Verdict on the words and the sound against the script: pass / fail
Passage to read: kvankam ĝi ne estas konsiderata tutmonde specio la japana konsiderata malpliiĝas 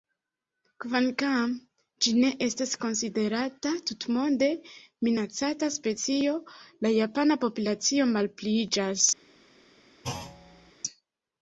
fail